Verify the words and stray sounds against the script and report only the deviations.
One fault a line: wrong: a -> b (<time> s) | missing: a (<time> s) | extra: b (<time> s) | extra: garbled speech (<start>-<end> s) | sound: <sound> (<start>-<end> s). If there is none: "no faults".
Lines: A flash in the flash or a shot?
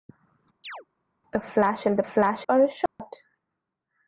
sound: chirp (0.6-0.9 s)
sound: dropout (2.9-3.0 s)